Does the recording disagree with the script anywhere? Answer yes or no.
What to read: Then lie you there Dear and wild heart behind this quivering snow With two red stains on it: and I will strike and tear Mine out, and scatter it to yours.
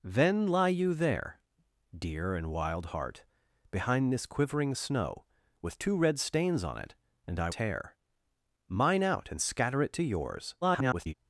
yes